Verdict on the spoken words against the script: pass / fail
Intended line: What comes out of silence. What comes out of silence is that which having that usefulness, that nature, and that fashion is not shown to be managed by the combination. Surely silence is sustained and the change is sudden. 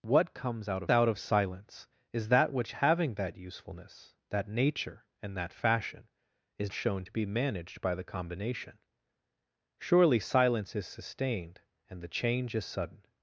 fail